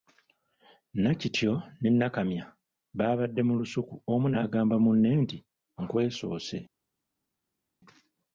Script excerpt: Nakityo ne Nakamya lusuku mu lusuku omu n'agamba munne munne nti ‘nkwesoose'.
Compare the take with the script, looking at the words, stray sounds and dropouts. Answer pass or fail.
fail